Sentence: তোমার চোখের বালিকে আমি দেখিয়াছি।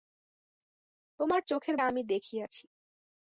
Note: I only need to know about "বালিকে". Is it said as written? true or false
false